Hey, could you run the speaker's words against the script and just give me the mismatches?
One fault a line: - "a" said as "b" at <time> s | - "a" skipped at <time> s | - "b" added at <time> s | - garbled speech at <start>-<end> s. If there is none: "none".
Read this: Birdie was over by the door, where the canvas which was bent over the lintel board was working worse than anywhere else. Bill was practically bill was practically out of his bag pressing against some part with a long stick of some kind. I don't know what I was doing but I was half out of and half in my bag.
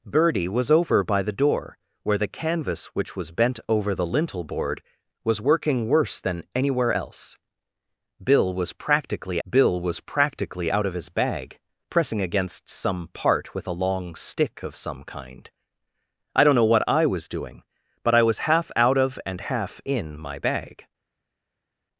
none